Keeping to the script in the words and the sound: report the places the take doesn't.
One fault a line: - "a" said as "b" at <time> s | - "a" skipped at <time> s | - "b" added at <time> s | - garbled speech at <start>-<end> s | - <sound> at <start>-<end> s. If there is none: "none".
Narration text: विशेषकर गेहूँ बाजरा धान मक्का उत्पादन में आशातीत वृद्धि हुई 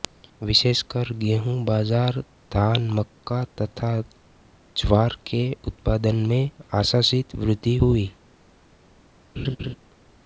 - "तथा ज्वार के" added at 3.6 s
- laugh at 9.4-9.8 s